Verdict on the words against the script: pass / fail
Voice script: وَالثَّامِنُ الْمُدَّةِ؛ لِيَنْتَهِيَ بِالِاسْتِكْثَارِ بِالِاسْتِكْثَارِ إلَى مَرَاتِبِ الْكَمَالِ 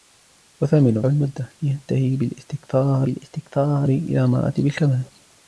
pass